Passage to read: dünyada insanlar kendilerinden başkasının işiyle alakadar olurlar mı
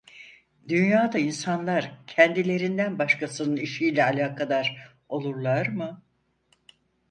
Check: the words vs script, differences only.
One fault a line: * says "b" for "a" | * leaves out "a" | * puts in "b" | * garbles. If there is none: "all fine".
all fine